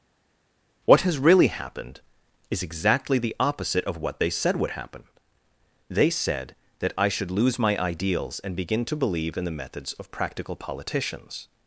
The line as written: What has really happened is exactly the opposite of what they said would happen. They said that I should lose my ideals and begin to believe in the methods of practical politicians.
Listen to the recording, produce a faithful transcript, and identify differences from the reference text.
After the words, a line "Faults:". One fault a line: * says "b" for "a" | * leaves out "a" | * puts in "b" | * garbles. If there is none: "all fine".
What has really happened is exactly the opposite of what they said would happen. They said that I should lose my ideals and begin to believe in the methods of practical politicians.
Faults:
all fine